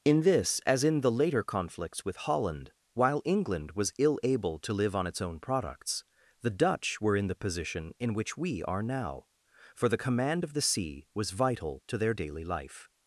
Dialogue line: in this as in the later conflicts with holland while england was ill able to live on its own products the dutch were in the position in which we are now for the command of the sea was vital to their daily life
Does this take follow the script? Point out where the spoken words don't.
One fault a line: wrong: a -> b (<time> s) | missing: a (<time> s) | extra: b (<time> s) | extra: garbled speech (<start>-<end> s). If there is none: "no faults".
no faults